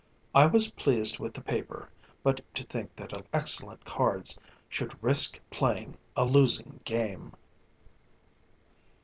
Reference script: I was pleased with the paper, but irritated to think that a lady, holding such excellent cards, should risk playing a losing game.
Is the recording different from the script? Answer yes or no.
yes